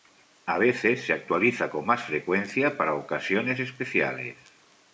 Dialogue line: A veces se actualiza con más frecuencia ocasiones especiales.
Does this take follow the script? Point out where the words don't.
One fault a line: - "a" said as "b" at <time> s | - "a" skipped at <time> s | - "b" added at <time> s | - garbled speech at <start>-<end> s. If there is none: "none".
- "para" added at 2.8 s